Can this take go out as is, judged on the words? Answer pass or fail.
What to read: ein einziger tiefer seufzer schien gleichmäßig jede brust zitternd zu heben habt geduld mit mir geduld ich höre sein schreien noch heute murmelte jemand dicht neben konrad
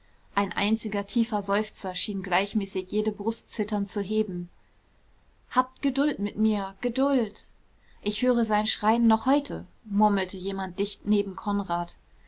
pass